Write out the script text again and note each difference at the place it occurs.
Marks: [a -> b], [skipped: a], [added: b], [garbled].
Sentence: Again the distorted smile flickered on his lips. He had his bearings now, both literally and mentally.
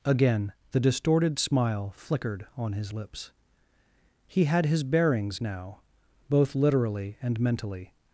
Again the distorted smile flickered on his lips. He had his bearings now, both literally and mentally.